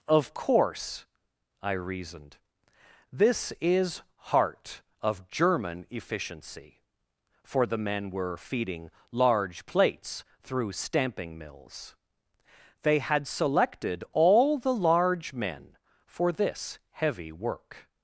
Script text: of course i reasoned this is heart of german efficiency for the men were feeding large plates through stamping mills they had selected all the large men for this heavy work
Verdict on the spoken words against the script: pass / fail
pass